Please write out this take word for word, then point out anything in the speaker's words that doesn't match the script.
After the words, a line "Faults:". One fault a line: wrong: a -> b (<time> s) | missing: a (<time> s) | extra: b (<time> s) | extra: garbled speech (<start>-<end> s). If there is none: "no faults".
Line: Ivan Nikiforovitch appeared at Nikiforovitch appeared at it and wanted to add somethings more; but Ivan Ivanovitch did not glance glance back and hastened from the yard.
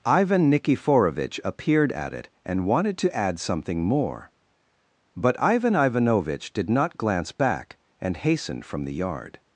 Ivan Nikiforovitch appeared at it and wanted to add something more; but Ivan Ivanovitch did not glance back and hastened from the yard.
Faults:
missing: Nikiforovitch appeared at (2.1 s)
wrong: somethings -> something (3.4 s)
missing: glance (7.3 s)